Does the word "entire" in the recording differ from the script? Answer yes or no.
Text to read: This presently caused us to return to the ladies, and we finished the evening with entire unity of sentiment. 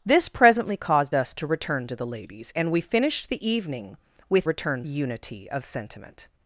yes